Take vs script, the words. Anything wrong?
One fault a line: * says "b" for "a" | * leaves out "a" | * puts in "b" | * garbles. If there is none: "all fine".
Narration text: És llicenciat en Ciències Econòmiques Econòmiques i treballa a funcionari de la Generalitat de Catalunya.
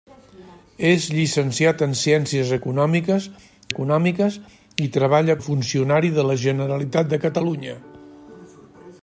all fine